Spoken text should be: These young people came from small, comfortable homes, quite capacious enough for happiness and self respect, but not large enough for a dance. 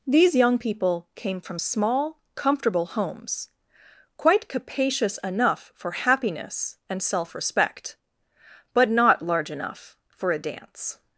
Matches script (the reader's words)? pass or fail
pass